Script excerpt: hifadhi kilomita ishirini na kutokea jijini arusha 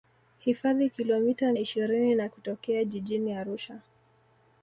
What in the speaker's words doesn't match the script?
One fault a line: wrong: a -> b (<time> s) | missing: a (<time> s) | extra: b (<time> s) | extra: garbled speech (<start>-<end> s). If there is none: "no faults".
no faults